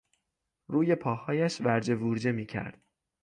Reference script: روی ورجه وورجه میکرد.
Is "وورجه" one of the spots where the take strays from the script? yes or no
no